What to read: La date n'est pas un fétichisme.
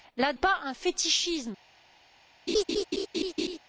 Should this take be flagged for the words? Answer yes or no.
yes